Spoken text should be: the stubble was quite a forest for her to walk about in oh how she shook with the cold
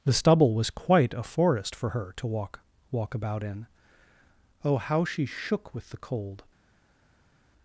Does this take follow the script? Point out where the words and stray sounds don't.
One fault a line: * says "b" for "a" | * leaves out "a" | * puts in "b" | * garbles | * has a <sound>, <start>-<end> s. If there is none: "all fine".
* puts in "walk"